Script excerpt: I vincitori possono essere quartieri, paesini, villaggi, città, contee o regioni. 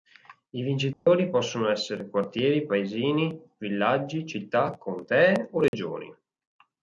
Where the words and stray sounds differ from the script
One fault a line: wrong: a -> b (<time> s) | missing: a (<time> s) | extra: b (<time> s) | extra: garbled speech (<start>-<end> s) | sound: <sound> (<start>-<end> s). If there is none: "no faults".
sound: dropout (0.9-1.1 s)
sound: dropout (5.7-5.7 s)